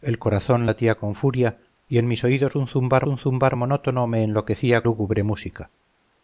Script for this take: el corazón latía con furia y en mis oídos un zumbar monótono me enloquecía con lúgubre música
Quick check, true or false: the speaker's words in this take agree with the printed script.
false